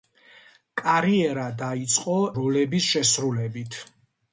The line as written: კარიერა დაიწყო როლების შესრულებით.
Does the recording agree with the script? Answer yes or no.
yes